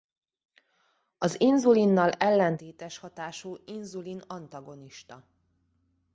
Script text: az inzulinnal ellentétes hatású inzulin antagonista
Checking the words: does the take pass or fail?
pass